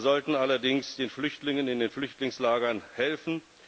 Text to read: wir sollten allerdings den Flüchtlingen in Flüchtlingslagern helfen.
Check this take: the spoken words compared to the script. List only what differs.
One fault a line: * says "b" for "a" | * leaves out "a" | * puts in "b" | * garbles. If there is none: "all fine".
* puts in "den"